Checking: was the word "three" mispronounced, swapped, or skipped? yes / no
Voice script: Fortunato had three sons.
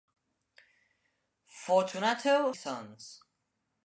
yes